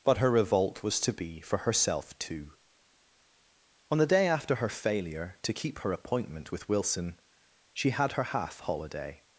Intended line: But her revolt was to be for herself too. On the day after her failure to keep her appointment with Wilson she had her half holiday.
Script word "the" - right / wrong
right